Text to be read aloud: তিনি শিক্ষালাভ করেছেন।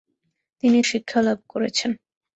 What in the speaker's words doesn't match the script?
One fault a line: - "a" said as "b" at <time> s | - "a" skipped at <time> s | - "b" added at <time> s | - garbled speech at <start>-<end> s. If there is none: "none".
none